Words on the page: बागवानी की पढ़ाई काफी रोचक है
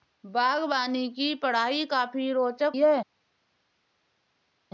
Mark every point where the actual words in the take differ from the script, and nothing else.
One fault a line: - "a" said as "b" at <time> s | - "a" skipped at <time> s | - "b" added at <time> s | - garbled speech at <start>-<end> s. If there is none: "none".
none